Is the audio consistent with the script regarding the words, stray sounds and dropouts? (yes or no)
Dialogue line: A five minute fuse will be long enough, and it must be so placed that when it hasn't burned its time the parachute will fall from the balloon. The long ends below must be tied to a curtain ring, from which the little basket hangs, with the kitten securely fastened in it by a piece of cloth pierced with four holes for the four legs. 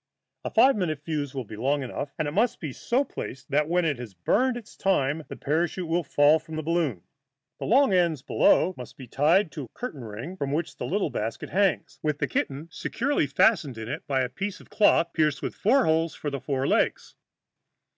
no